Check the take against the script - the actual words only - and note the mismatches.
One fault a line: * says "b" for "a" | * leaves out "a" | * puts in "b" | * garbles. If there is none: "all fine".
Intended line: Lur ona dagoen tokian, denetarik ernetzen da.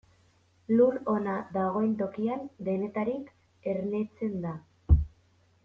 all fine